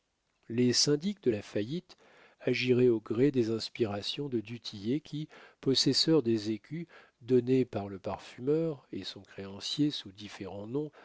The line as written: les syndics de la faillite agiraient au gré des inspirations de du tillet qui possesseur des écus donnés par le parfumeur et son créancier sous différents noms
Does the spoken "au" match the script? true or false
true